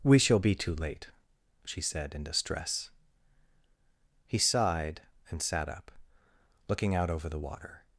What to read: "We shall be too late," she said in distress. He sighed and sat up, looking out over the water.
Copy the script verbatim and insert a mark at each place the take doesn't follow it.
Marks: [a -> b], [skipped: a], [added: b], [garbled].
"We shall be too late," she said in distress. He sighed and sat up, looking out over the water.